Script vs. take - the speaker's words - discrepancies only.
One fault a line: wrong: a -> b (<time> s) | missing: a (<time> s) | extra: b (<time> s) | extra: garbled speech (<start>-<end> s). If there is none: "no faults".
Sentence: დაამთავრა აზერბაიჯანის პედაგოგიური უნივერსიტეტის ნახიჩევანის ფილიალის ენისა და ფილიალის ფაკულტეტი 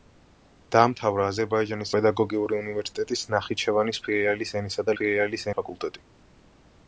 no faults